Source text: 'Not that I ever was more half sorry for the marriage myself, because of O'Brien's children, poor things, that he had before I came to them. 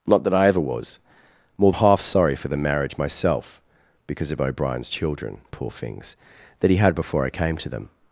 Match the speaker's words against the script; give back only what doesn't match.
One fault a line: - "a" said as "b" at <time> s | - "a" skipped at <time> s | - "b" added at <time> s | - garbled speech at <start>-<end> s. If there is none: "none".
none